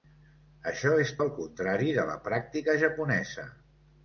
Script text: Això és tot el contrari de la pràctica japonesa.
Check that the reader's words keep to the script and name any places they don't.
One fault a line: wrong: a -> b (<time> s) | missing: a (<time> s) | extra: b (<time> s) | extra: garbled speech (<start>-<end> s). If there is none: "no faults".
missing: tot (1.1 s)